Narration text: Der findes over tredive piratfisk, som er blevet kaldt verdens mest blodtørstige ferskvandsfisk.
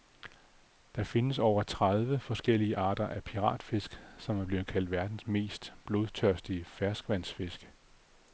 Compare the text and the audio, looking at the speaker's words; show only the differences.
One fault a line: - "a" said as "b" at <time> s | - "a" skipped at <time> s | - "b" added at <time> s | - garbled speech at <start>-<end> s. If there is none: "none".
- "forskellige arter af" added at 2.2 s